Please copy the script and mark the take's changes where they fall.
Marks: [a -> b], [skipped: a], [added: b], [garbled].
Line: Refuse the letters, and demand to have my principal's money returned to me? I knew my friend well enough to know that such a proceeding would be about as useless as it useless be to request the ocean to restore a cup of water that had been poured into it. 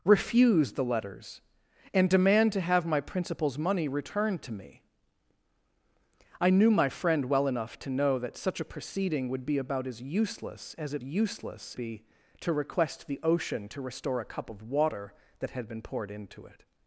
Refuse the letters, and demand to have my principal's money returned to me? I knew my friend well enough to know that such a proceeding would be about as useless as it useless be to request the ocean to restore a cup of water that had been poured into it.